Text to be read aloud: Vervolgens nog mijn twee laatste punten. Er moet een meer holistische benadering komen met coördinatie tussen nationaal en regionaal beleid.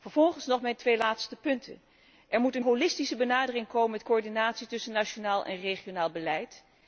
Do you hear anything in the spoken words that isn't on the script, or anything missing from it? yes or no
yes